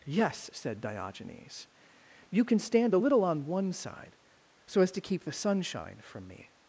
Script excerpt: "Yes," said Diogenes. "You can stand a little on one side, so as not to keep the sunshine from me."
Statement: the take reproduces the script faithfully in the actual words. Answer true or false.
false